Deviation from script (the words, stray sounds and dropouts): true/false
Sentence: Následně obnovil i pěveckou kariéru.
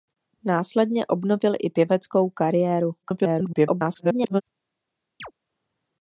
true